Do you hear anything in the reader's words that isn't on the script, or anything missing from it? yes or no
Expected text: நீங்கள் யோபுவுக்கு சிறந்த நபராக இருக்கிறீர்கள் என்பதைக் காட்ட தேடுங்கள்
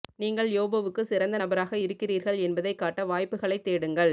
yes